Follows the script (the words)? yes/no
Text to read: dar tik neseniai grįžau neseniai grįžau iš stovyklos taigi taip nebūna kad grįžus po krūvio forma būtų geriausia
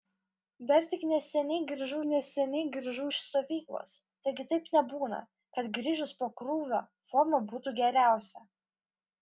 yes